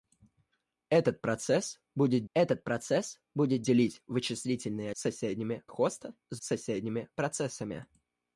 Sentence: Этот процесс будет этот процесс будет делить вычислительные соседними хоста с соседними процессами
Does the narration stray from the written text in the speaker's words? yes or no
no